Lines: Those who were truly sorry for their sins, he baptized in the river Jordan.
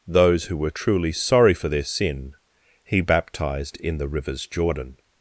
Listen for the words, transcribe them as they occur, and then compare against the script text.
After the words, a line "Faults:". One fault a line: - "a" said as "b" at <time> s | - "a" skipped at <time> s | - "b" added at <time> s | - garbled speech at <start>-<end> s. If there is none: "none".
Those who were truly sorry for their sin, he baptized in the rivers Jordan.
Faults:
- "sins" said as "sin" at 1.8 s
- "river" said as "rivers" at 4.1 s